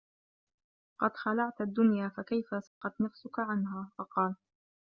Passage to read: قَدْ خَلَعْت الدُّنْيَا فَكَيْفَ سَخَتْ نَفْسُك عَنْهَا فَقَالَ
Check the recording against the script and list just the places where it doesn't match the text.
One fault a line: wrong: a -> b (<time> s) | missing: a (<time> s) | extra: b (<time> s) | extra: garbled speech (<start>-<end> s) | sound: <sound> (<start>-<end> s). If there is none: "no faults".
sound: dropout (2.7-2.8 s)